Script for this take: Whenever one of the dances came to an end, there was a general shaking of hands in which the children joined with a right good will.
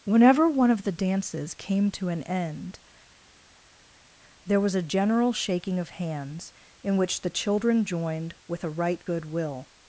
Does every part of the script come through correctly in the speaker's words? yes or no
yes